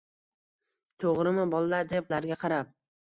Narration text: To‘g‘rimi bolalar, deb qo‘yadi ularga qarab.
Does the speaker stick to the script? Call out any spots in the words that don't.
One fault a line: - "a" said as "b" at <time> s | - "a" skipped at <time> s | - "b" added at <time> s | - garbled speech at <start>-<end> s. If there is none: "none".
- "qo‘yadi" skipped at 2.1 s